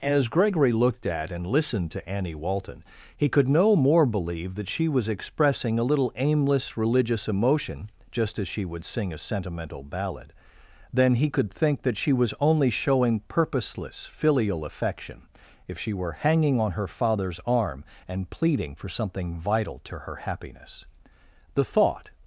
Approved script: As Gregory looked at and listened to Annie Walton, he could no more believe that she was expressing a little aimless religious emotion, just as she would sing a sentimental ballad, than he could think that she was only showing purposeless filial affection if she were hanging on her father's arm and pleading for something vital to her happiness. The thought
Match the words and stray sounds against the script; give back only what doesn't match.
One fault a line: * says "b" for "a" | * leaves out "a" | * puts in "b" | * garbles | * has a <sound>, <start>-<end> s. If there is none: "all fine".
all fine